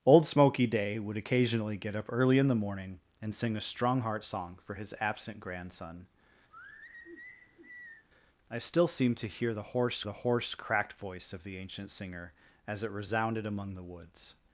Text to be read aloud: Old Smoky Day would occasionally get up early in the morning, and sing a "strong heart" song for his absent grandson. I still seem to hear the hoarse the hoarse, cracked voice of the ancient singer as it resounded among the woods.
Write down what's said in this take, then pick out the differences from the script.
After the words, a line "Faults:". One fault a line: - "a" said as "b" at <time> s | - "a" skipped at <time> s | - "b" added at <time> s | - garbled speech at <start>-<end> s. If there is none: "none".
Old Smoky Day would occasionally get up early in the morning, and sing a "strong heart" song for his absent grandson. I still seem to hear the hoarse the hoarse, cracked voice of the ancient singer as it resounded among the woods.
Faults:
none